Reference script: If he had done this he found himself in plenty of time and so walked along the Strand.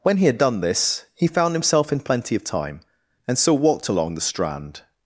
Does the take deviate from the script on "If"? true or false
true